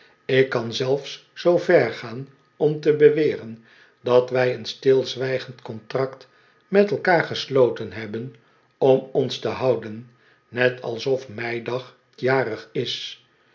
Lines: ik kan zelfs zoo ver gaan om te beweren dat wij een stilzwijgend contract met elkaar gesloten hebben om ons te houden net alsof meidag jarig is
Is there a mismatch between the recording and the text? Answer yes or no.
no